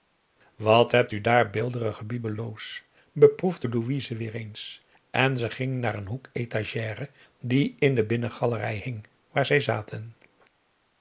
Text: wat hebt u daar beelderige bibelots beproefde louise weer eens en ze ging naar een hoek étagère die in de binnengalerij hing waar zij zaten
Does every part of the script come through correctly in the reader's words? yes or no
yes